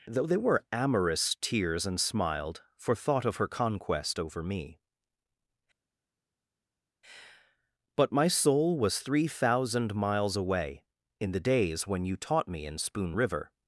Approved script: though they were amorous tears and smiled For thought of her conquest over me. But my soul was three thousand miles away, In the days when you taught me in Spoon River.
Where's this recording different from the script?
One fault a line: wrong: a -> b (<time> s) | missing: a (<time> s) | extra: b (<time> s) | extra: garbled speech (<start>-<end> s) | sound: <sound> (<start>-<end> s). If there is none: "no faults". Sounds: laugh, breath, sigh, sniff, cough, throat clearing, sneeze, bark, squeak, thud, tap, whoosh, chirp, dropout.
no faults